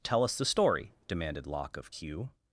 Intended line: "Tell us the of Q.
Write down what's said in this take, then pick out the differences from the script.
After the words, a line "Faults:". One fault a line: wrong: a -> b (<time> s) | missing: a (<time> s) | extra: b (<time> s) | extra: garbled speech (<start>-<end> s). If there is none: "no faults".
"Tell us the story," demanded Locke of Q.
Faults:
extra: story demanded Locke (0.5 s)